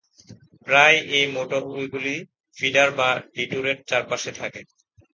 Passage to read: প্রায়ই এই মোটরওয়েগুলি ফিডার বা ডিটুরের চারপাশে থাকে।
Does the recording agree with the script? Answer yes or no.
yes